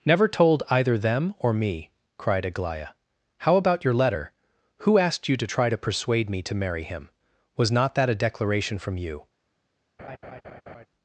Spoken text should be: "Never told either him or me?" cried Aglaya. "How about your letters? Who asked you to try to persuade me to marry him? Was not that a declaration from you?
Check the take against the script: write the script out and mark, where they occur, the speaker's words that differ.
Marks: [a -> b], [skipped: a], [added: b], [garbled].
"Never told either [him -> them] or me?" cried Aglaya. "How about your [letters? -> letter] Who asked you to try to persuade me to marry him? Was not that a declaration from you?